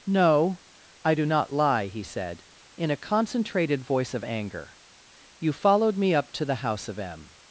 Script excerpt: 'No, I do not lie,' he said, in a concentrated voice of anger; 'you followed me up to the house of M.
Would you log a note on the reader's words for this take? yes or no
no